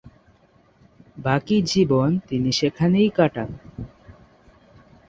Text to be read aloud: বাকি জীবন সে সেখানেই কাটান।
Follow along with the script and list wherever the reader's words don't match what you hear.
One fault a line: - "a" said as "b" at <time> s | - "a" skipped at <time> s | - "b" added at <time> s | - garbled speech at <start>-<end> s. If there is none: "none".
- "সে" said as "তিনি" at 2.3 s